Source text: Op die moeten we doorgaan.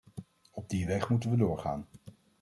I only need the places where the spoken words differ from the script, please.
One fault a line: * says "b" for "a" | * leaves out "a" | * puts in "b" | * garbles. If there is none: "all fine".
* puts in "weg"